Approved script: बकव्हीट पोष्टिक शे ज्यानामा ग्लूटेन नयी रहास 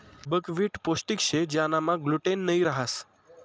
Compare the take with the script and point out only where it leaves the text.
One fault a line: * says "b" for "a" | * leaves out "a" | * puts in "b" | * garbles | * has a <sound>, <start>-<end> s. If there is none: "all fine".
all fine